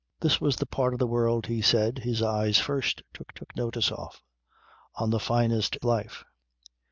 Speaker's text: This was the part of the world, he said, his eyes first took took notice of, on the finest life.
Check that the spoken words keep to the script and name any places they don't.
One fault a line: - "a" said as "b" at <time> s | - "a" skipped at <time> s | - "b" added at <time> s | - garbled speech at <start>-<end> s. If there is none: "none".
none